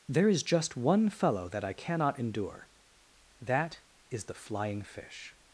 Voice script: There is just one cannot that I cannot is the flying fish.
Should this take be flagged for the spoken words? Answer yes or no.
yes